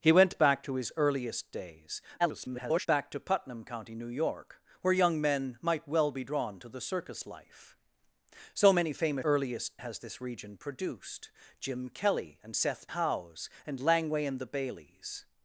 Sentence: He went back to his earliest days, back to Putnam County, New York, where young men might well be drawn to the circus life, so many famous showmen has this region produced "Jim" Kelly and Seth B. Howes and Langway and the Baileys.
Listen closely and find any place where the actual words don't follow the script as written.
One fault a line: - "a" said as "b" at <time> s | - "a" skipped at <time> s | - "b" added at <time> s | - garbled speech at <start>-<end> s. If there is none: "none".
- garbled speech at 2.2-2.9 s
- "showmen" said as "earliest" at 9.2 s
- "B" skipped at 12.9 s